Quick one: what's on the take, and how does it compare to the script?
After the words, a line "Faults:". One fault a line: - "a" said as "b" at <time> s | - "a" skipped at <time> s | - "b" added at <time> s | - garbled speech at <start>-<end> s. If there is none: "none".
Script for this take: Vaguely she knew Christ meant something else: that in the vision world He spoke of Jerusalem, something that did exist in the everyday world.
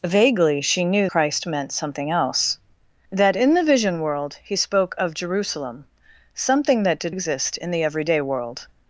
Vaguely she knew Christ meant something else: that in the vision world He spoke of Jerusalem, something that did exist in the everyday world.
Faults:
none